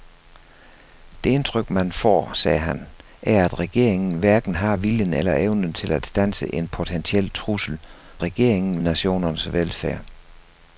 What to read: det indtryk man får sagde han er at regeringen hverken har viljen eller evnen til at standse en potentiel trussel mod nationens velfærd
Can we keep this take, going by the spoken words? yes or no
no